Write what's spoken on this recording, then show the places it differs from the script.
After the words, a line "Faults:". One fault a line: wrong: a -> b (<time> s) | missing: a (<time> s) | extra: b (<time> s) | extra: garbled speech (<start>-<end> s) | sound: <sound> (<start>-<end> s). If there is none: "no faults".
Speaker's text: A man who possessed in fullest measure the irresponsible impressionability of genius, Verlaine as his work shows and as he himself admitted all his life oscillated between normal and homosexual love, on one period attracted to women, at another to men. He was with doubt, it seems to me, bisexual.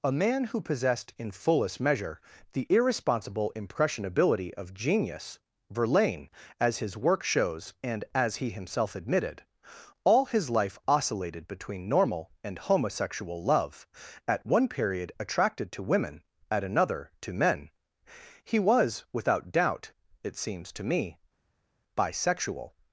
A man who possessed in fullest measure the irresponsible impressionability of genius, Verlaine as his work shows and as he himself admitted all his life oscillated between normal and homosexual love, at one period attracted to women, at another to men. He was without doubt, it seems to me, bisexual.
Faults:
wrong: on -> at (14.3 s)
wrong: with -> without (19.1 s)